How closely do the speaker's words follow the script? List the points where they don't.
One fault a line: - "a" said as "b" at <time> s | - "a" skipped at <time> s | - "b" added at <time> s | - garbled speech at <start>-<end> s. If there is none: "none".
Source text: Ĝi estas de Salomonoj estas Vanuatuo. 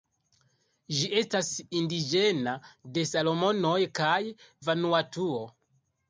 - "indiĝena" added at 1.8 s
- "estas" said as "kaj" at 4.0 s